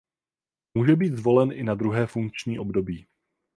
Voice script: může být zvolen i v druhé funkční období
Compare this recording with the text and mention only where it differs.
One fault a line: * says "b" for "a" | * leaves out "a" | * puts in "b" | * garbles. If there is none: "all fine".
* says "na" for "v"